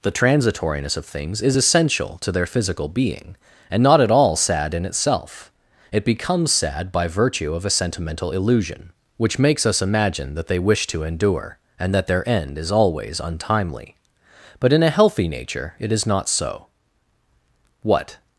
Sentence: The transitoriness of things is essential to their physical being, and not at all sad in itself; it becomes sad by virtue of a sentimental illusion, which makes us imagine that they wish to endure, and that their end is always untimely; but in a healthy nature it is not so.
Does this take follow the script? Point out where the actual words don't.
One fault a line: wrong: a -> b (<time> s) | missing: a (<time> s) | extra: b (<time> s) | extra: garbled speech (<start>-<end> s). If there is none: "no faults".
extra: What (17.8 s)